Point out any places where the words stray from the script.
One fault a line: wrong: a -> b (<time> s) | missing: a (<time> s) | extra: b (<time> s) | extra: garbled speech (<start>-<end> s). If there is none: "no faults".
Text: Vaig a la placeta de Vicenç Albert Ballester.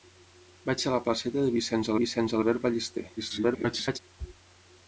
extra: Vicenç (2.0 s)
extra: garbled speech (3.2-4.0 s)